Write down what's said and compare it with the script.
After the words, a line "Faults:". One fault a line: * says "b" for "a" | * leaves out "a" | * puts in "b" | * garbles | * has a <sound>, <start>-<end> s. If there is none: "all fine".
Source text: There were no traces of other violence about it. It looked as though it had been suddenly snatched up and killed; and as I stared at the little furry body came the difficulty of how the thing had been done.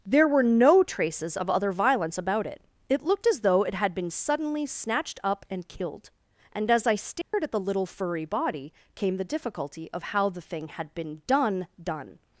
There were no traces of other violence about it. It looked as though it had been suddenly snatched up and killed; and as I stared at the little furry body came the difficulty of how the thing had been done done.
Faults:
* has a dropout, 7.2-7.3 s
* puts in "done"